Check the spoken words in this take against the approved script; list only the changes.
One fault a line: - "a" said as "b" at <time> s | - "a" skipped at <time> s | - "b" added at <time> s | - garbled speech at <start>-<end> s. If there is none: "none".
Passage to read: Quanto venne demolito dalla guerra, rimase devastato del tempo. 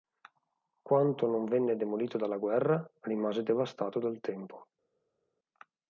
- "non" added at 1.3 s
- "del" said as "dal" at 4.0 s